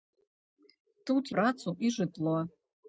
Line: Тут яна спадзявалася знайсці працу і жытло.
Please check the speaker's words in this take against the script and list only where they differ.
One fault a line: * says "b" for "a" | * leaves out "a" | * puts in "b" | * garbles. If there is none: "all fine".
* leaves out "яна спадзявалася знайсці"